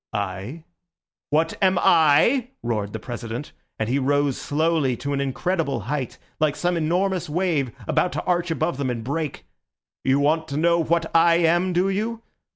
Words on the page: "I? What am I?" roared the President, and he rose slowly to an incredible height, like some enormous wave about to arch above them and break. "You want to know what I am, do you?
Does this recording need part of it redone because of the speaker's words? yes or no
no